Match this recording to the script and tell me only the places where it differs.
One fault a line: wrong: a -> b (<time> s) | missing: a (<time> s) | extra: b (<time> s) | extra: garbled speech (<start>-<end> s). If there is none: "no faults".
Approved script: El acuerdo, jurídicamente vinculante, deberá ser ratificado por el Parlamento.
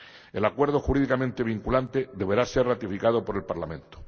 no faults